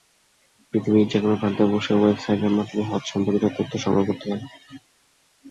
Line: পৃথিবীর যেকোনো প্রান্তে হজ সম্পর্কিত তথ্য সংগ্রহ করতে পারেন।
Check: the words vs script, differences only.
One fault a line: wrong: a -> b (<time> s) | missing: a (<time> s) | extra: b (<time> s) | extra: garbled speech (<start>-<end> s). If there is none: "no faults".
extra: বসে ওয়েবসাইটের মাধ্যমে (1.7 s)